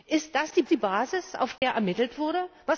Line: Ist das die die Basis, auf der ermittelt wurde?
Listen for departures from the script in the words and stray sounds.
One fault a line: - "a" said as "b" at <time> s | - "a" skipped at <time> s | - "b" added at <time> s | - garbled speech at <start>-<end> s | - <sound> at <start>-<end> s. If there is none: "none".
- dropout at 1.6-1.6 s